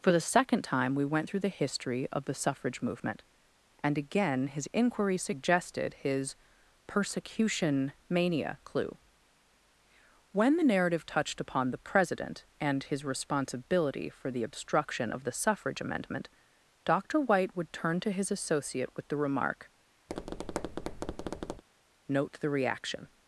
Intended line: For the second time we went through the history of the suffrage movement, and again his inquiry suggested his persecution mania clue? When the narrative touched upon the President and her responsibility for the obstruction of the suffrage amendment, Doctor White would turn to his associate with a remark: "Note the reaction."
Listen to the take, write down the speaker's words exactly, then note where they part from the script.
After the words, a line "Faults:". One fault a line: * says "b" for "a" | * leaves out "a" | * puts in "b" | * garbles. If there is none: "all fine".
For the second time we went through the history of the suffrage movement, and again his inquiry suggested his persecution mania clue? When the narrative touched upon the President and his responsibility for the obstruction of the suffrage amendment, Doctor White would turn to his associate with the remark: "Note the reaction."
Faults:
* says "his" for "her"
* says "the" for "a"